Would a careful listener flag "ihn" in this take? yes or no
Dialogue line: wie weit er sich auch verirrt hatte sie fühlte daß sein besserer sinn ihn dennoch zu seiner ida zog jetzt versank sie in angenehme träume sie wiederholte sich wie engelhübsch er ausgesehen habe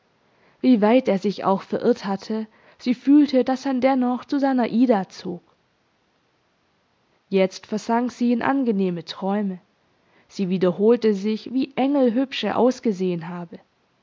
yes